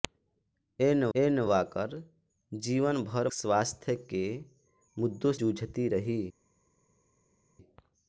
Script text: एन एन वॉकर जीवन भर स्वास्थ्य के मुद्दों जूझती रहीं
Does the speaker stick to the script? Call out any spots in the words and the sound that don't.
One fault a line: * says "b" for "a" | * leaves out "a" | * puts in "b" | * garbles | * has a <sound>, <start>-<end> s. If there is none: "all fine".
all fine